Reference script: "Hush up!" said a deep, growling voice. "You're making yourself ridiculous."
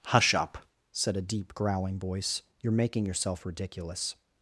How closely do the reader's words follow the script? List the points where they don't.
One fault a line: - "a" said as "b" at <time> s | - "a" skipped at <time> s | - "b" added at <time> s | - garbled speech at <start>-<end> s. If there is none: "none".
none